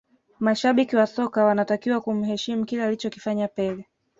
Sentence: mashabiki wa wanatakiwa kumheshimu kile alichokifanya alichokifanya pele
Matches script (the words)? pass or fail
fail